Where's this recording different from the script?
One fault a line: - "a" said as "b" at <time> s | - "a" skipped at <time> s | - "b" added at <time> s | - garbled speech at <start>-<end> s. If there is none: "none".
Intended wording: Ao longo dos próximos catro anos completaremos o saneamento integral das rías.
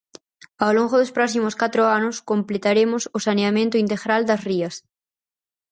none